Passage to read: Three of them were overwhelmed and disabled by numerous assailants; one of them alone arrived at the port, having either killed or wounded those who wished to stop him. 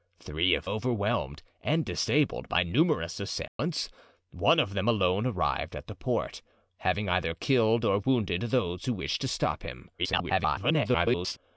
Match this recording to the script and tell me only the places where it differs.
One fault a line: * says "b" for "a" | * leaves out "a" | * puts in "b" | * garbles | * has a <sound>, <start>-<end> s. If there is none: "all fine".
* leaves out "them were"
* has a dropout, 3.5-3.6 s
* garbles